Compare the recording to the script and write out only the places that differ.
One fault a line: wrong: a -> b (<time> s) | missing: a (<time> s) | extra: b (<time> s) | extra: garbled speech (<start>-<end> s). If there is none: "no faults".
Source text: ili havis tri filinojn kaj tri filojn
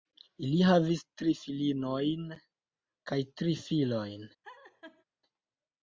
no faults